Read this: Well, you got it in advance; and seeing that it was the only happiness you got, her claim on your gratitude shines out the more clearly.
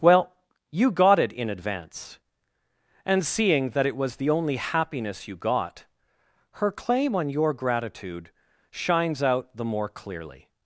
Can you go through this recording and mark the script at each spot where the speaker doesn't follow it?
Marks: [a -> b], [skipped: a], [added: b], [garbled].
Well, you got it in advance; and seeing that it was the only happiness you got, her claim on your gratitude shines out the more clearly.